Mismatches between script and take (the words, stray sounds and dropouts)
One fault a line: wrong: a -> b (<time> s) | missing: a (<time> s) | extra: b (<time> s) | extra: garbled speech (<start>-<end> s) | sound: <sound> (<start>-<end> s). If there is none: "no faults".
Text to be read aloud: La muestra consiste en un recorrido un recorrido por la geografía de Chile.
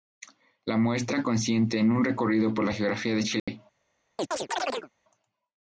missing: un recorrido (2.5 s)
sound: dropout (3.4-3.5 s)
sound: chirp (4.2-4.9 s)